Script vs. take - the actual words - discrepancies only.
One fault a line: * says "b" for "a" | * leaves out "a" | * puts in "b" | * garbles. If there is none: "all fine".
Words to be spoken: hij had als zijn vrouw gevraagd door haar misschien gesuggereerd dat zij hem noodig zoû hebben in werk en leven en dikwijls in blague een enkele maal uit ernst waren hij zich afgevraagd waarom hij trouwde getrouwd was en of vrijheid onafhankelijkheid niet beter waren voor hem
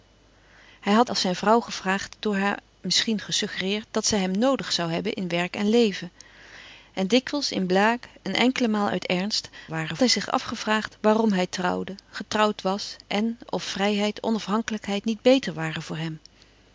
all fine